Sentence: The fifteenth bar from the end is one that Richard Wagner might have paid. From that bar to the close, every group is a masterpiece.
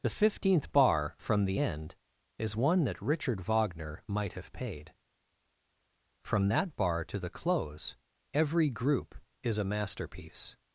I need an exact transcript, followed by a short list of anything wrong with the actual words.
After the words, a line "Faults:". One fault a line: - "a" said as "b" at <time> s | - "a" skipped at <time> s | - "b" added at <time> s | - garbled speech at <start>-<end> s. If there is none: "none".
The fifteenth bar from the end is one that Richard Wagner might have paid. From that bar to the close, every group is a masterpiece.
Faults:
none